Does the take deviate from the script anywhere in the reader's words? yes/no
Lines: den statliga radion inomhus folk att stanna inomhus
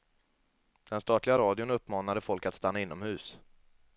yes